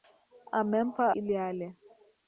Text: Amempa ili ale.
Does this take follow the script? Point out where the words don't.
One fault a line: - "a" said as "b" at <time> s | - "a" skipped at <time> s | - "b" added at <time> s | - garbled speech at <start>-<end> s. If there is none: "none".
none